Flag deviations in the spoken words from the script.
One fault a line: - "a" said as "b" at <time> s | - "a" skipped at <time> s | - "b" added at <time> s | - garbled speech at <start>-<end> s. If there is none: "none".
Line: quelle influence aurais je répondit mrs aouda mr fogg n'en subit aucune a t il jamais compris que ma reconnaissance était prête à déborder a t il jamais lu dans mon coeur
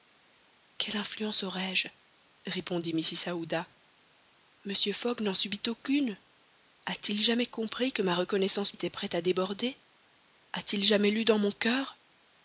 none